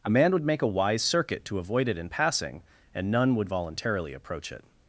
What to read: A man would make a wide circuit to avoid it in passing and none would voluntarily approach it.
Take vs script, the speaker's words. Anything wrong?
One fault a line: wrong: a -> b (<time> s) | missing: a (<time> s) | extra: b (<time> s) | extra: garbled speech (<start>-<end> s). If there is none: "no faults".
wrong: wide -> wise (0.7 s)